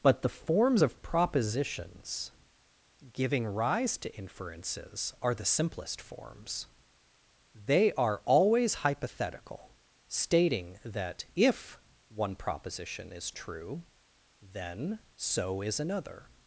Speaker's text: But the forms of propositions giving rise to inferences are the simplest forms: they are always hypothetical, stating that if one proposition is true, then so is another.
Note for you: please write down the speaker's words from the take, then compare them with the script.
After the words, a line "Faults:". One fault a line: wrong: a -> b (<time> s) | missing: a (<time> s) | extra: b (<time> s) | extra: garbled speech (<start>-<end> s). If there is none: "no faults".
But the forms of propositions giving rise to inferences are the simplest forms: they are always hypothetical, stating that if one proposition is true, then so is another.
Faults:
no faults